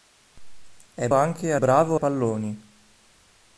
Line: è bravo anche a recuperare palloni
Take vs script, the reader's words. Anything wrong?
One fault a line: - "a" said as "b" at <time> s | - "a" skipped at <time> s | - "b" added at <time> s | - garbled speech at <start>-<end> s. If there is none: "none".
- "bravo" skipped at 1.1 s
- "recuperare" said as "bravo" at 1.6 s